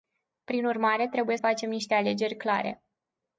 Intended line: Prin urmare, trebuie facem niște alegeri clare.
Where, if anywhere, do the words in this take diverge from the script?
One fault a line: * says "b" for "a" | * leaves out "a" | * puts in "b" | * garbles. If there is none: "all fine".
all fine